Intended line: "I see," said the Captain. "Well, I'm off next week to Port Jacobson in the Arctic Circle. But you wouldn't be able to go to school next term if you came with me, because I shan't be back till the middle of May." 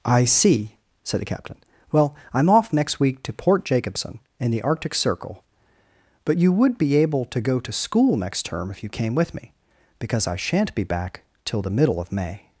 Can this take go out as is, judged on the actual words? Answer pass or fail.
fail